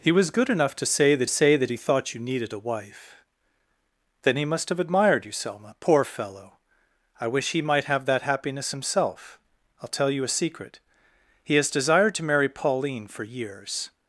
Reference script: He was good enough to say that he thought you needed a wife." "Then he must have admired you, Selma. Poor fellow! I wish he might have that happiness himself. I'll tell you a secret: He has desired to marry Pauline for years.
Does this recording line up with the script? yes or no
no